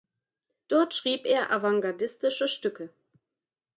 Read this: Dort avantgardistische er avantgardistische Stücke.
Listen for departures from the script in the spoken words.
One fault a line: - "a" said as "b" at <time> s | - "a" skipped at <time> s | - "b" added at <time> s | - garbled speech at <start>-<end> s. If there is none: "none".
- "avantgardistische" said as "schrieb" at 0.9 s